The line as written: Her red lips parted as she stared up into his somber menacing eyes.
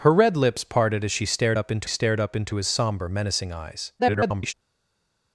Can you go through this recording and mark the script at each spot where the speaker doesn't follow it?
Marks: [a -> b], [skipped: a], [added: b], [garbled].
Her red lips parted as she stared up into [added: stared up into] his somber menacing eyes. [garbled]